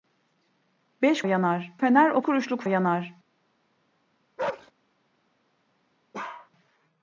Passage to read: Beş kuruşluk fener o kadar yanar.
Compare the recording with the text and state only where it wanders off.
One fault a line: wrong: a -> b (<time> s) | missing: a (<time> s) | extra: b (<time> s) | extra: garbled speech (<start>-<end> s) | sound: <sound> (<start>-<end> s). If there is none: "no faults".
wrong: kuruşluk -> yanar (1.2 s)
wrong: kadar -> kuruşluk (2.2 s)
sound: bark (4.4-4.7 s)
sound: bark (6.1-6.5 s)